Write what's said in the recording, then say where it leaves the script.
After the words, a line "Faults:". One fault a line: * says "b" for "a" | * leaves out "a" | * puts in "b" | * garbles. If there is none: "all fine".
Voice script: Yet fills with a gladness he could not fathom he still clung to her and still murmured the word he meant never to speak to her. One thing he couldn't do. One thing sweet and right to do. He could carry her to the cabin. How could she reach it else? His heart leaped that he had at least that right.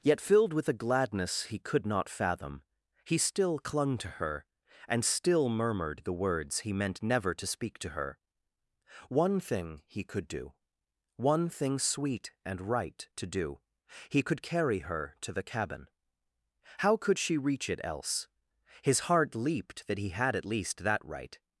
Yet filled with a gladness he could not fathom he still clung to her and still murmured the words he meant never to speak to her. One thing he could do. One thing sweet and right to do. He could carry her to the cabin. How could she reach it else? His heart leaped that he had at least that right.
Faults:
* says "filled" for "fills"
* says "words" for "word"
* says "could" for "couldn't"